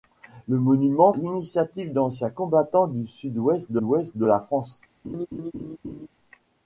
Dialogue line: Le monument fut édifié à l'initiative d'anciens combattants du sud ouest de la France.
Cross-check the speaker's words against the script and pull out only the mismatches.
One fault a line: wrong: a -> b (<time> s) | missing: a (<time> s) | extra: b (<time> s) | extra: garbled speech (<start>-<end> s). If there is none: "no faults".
missing: fut édifié à (1.1 s)
extra: ouest de (3.8 s)